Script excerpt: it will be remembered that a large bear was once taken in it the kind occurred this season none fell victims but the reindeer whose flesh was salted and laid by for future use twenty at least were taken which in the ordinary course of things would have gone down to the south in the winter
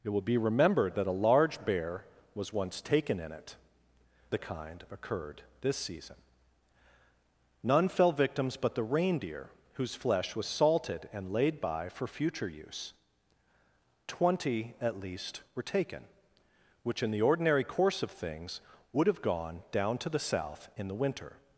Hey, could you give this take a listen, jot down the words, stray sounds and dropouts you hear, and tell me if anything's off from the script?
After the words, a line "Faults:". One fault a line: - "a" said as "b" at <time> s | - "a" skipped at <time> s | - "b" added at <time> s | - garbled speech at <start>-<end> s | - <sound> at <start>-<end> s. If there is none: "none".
it will be remembered that a large bear was once taken in it the kind occurred this season none fell victims but the reindeer whose flesh was salted and laid by for future use twenty at least were taken which in the ordinary course of things would have gone down to the south in the winter
Faults:
none